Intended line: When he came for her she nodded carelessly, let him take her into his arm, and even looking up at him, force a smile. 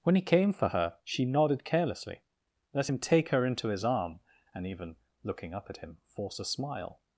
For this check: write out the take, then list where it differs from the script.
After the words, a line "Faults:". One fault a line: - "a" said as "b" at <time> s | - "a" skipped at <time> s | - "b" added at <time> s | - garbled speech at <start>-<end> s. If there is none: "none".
When he came for her she nodded carelessly, let him take her into his arm, and even looking up at him, force a smile.
Faults:
none